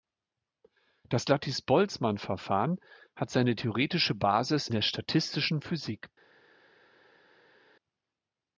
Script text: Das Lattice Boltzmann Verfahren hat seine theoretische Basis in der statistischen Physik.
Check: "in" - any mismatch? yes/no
yes